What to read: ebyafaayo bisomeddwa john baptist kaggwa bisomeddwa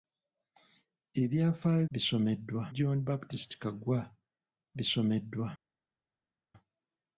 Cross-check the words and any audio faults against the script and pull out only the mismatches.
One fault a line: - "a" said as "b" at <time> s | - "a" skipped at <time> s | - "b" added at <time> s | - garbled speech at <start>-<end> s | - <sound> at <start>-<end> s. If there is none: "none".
none